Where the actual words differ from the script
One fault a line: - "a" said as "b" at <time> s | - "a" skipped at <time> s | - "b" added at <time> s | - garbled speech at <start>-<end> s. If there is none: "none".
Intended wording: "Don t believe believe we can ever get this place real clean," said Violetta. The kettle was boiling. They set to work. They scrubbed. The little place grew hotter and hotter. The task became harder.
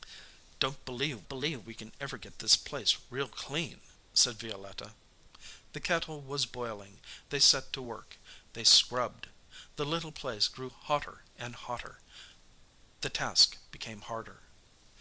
none